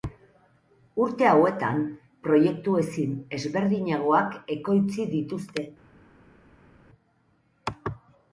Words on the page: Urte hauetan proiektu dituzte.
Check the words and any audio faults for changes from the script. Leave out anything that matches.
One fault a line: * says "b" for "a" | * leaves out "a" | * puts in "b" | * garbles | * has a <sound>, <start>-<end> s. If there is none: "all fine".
* puts in "ezin ezberdinagoak ekoitzi"